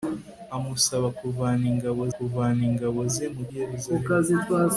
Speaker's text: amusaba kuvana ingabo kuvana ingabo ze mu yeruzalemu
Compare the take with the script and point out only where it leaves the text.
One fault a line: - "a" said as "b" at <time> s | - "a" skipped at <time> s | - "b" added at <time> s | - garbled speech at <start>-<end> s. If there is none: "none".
none